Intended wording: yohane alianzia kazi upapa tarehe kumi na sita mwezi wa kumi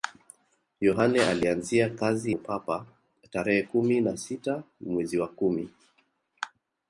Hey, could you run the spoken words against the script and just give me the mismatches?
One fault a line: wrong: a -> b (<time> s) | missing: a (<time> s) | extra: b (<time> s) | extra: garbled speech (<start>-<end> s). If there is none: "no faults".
no faults